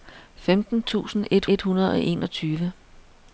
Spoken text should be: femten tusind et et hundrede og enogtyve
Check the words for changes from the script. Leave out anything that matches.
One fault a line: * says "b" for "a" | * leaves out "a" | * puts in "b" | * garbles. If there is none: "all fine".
all fine